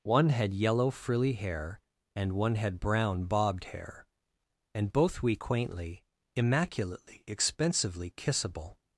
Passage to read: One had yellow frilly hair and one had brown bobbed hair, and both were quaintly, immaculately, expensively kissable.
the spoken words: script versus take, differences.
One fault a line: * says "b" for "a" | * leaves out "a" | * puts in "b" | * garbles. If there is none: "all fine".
* says "we" for "were"